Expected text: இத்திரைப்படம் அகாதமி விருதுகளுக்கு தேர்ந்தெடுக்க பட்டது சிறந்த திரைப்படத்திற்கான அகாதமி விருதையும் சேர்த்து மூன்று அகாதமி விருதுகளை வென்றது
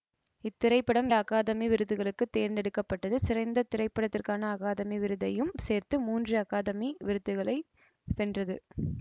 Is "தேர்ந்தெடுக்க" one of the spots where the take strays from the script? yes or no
no